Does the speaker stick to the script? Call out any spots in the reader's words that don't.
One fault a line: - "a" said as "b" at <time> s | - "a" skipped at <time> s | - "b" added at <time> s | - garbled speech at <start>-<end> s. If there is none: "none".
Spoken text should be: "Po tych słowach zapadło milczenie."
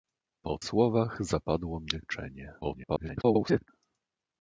- "tych" skipped at 0.6 s
- garbled speech at 2.6-3.7 s